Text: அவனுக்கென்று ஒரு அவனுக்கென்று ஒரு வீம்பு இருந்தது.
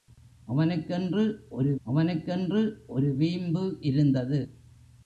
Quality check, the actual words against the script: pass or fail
pass